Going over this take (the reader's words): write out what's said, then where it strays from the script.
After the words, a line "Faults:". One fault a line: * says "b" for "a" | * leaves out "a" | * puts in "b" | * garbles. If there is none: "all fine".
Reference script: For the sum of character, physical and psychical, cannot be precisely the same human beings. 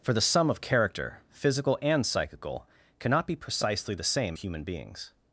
For the sum of character, physical and psychical, cannot be precisely the same human beings.
Faults:
all fine